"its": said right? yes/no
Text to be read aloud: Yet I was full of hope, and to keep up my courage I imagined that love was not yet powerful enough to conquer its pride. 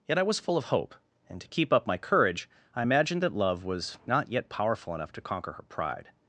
no